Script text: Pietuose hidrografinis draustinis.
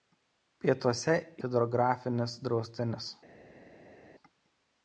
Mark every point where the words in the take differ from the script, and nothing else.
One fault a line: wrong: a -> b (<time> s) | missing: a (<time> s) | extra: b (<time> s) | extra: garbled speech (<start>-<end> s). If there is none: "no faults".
no faults